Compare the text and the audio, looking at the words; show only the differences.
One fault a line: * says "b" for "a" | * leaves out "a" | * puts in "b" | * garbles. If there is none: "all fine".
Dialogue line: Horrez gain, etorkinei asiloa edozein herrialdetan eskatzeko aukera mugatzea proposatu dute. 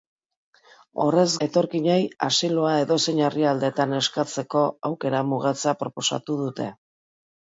* leaves out "gain"